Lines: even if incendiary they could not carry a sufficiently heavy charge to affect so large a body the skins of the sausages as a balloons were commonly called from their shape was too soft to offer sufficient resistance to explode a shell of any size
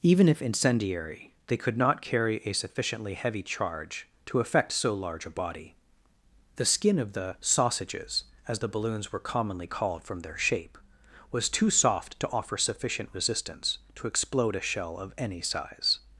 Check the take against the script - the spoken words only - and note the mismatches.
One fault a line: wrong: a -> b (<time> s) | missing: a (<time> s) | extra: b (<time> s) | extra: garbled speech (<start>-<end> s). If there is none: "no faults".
wrong: skins -> skin (6.7 s)
wrong: a -> the (8.6 s)